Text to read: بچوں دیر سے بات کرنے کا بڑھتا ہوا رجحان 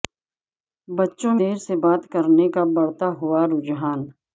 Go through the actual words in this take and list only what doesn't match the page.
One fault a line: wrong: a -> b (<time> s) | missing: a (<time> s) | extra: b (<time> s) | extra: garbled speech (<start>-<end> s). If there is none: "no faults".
no faults